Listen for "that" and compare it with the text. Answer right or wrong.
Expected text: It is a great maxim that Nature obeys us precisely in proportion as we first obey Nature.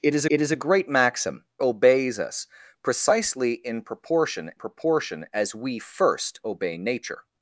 wrong